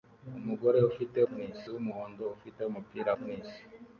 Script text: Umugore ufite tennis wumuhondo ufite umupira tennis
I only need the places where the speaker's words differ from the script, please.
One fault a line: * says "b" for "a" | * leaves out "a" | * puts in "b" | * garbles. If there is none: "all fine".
all fine